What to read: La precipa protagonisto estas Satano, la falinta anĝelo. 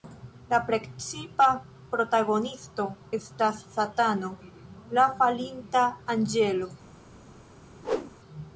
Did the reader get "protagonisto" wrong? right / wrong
right